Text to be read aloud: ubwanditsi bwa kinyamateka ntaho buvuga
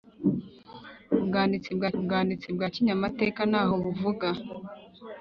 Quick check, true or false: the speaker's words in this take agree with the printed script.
false